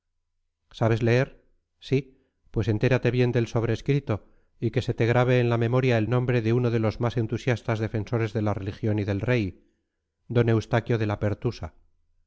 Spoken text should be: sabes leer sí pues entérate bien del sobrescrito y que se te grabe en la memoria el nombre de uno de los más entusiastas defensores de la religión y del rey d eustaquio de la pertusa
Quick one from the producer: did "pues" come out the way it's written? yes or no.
yes